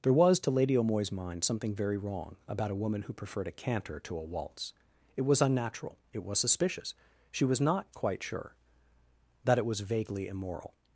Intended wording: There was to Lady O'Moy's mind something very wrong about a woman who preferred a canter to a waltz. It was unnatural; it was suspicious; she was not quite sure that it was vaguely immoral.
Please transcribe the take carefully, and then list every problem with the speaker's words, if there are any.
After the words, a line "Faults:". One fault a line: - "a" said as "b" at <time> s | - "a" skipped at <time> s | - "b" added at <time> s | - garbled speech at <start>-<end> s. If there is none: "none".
There was to Lady O'Moy's mind something very wrong about a woman who preferred a canter to a waltz. It was unnatural; it was suspicious; she was not quite sure that it was vaguely immoral.
Faults:
none